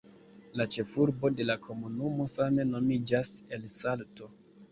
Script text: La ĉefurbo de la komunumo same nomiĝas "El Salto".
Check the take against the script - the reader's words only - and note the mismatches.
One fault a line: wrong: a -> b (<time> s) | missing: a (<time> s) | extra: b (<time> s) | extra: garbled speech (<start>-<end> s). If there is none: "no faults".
no faults